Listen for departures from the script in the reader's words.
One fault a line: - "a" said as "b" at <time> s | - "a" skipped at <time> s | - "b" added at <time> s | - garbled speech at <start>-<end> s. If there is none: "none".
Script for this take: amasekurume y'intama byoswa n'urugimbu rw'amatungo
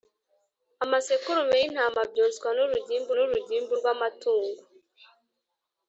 - "n'urugimbu" added at 3.1 s